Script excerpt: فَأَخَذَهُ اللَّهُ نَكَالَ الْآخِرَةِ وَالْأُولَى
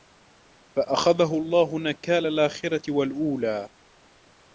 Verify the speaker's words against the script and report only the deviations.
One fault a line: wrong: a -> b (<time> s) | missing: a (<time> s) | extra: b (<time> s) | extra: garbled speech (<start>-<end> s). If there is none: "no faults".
no faults